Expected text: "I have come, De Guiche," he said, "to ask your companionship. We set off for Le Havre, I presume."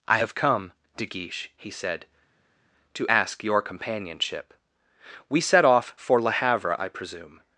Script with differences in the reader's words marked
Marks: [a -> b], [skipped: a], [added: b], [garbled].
"I have come, De Guiche," he said, "to ask your companionship. We set off for Le Havre, I presume."